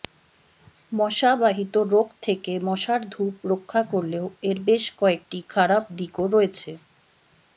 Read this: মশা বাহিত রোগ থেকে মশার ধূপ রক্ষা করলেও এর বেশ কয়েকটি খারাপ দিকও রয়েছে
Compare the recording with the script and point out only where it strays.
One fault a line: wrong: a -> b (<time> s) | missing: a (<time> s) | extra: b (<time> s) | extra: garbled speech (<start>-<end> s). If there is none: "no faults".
no faults